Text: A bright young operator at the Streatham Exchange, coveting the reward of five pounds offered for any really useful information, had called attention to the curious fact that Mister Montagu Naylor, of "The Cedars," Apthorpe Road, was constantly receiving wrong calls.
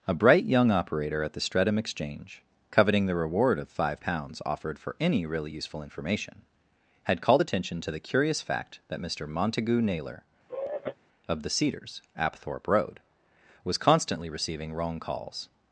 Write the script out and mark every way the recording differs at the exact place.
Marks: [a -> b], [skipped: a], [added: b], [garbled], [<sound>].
A bright young operator at the Streatham Exchange, coveting the reward of five pounds offered for any really useful information, had called attention to the curious fact that Mister Montagu Naylor, [sigh] of "The Cedars," Apthorpe Road, was constantly receiving wrong calls.